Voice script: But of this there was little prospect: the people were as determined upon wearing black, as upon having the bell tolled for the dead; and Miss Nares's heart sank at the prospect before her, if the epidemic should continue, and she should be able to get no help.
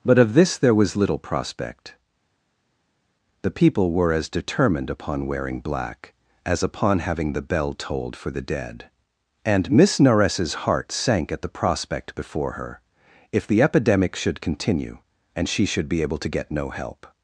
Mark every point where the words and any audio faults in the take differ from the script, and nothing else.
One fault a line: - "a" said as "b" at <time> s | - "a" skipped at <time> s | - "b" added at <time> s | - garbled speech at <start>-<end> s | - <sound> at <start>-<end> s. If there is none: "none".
none